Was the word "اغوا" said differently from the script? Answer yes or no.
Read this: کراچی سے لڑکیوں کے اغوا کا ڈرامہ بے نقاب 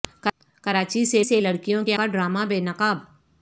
yes